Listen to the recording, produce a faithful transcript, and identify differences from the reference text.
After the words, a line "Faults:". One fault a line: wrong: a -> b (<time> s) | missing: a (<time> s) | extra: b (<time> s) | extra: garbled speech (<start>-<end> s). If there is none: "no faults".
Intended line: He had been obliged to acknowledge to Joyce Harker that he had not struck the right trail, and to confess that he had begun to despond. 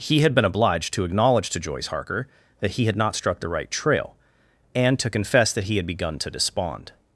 He had been obliged to acknowledge to Joyce Harker that he had not struck the right trail, and to confess that he had begun to despond.
Faults:
no faults